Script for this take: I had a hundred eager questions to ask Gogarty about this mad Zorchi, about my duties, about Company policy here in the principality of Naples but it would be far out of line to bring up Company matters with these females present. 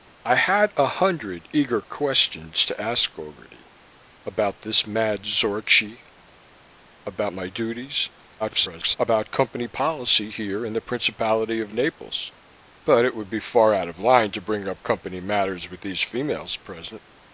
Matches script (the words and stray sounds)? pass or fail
fail